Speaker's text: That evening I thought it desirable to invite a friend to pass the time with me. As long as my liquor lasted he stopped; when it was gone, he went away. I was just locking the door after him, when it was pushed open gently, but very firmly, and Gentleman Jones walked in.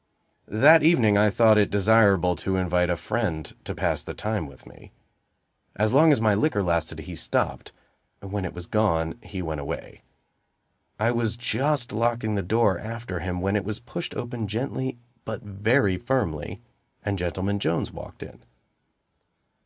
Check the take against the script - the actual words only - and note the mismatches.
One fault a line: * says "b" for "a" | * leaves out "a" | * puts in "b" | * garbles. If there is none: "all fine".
all fine